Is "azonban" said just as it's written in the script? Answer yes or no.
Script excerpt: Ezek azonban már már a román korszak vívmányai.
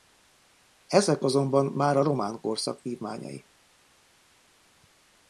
yes